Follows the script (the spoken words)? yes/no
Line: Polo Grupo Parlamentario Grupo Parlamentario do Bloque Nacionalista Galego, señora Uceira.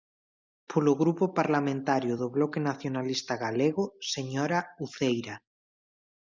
no